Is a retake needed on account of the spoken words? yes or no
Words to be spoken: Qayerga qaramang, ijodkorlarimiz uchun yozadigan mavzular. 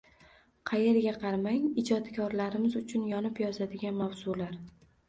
yes